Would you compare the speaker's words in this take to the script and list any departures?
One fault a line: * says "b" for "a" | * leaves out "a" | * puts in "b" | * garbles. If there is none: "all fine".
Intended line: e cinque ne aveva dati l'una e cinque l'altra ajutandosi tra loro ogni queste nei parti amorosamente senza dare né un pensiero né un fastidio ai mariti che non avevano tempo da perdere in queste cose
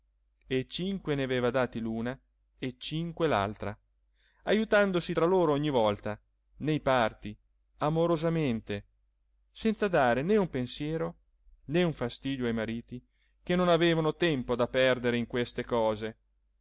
* says "volta" for "queste"